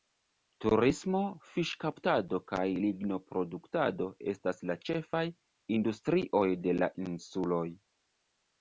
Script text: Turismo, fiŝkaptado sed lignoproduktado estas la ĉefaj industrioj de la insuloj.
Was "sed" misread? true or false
true